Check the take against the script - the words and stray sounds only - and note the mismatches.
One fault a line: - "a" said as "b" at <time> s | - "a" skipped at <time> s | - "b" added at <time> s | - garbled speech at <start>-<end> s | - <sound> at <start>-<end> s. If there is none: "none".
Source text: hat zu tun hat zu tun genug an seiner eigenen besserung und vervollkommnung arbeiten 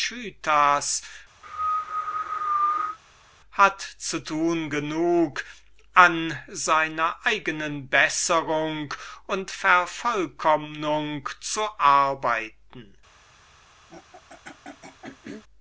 - cough at 1.4-3.0 s
- "hat zu tun" skipped at 4.7 s
- "zu" added at 11.4 s
- throat clearing at 13.9-15.4 s